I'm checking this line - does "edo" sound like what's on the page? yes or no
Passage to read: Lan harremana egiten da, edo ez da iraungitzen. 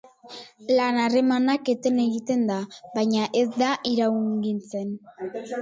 no